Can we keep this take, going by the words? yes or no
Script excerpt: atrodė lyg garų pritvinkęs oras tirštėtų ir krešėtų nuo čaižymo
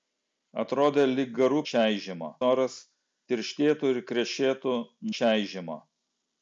no